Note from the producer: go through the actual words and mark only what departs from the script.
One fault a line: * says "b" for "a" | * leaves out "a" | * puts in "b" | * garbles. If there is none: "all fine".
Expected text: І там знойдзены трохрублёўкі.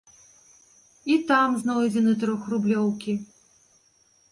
all fine